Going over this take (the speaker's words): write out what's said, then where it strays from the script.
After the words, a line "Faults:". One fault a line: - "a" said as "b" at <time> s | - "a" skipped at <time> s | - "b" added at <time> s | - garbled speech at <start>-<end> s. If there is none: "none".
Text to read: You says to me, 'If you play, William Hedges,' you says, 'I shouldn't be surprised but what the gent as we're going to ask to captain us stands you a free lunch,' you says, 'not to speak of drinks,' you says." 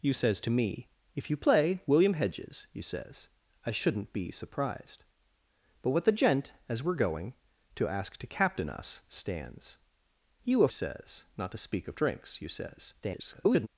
You says to me, 'If you play, William Hedges,' you says, 'I shouldn't be surprised but what the gent as we're going to ask to captain us stands you a says, 'not to speak of drinks,' you says." [garbled]
Faults:
- "free lunch you" skipped at 10.7 s
- garbled speech at 13.0-13.7 s